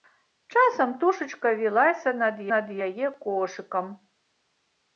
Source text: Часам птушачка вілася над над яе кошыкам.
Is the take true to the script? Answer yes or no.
yes